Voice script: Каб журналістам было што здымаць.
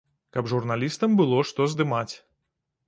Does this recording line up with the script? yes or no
yes